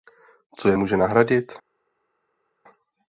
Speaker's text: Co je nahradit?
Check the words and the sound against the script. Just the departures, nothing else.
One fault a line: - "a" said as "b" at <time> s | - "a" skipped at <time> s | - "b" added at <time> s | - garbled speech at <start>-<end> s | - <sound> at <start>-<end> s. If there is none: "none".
- "může" added at 0.7 s